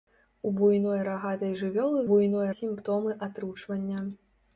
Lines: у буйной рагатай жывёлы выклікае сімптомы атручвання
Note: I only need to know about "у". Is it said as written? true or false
true